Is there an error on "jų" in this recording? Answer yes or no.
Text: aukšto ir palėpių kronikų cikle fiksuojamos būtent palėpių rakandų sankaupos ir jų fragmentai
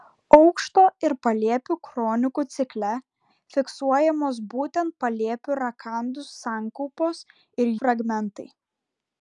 yes